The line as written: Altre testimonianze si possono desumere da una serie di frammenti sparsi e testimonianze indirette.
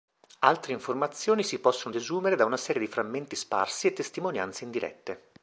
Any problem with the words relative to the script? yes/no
yes